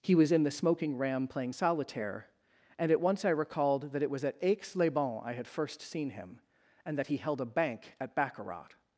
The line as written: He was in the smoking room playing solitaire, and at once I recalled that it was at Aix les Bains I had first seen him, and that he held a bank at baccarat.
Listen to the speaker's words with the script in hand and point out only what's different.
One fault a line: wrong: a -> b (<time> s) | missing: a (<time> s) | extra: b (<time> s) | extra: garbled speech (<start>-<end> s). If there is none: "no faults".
wrong: room -> ram (1.0 s)